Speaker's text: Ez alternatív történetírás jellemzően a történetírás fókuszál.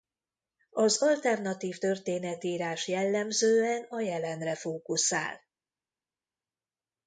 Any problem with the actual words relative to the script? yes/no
yes